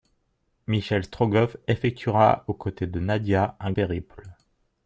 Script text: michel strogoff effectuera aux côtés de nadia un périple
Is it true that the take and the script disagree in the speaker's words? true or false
false